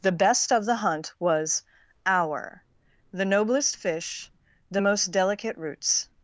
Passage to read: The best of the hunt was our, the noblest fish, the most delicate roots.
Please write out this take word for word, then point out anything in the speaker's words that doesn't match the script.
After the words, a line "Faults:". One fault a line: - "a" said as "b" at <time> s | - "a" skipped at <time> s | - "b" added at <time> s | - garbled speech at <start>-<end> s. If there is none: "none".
The best of the hunt was our, the noblest fish, the most delicate roots.
Faults:
none